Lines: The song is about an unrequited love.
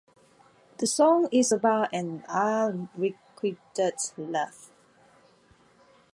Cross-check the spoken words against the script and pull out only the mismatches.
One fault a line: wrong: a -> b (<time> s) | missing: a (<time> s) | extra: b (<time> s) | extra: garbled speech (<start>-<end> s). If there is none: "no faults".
no faults